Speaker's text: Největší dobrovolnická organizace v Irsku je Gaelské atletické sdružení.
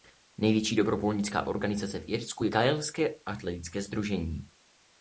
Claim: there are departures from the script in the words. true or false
false